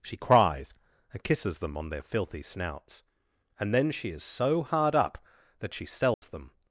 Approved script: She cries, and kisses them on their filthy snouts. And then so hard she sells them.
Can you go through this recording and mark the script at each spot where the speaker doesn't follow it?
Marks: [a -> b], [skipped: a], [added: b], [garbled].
She cries, and kisses them on their filthy snouts. And then [added: she is] so hard [added: up that] she sells them.